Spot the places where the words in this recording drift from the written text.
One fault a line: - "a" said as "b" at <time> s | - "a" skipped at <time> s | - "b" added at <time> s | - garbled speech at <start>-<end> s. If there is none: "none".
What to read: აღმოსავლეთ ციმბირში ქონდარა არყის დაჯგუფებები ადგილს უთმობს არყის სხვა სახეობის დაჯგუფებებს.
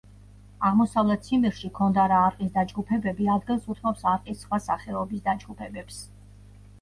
none